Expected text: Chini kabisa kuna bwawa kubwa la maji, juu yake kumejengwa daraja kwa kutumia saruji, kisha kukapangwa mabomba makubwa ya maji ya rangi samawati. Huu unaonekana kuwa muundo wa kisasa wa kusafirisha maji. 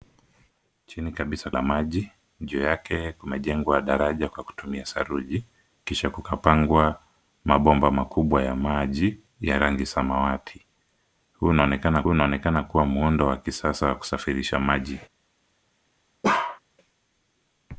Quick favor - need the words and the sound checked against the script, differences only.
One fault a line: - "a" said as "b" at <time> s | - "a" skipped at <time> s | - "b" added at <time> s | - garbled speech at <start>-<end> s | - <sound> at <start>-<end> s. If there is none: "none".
- "kuna bwawa kubwa" skipped at 1.5 s
- "unaonekana" added at 12.1 s
- bark at 16.2-16.6 s